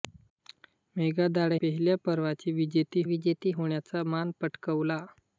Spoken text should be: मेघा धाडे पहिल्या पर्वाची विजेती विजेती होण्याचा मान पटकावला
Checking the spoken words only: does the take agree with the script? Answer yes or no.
yes